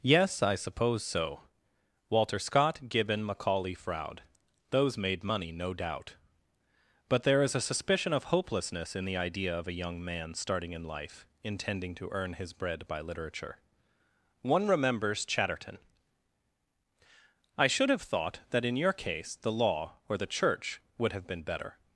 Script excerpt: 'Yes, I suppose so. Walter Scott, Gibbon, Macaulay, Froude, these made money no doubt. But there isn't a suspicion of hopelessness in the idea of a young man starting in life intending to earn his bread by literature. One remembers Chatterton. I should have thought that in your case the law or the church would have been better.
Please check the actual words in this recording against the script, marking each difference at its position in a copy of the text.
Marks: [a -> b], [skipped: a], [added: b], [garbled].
'Yes, I suppose so. Walter Scott, Gibbon, Macaulay, Froude, [these -> those] made money no doubt. But there [isn't -> is] a suspicion of hopelessness in the idea of a young man starting in life intending to earn his bread by literature. One remembers Chatterton. I should have thought that in your case the law or the church would have been better.